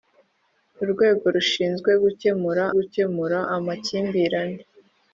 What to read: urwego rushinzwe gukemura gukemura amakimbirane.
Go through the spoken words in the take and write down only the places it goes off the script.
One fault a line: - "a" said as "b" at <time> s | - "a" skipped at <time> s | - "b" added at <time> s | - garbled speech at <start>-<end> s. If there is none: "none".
none